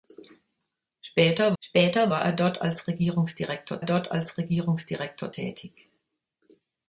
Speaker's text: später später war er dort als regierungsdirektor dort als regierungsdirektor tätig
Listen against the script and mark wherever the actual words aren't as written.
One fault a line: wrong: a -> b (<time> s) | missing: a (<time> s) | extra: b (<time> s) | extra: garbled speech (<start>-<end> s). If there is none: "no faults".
no faults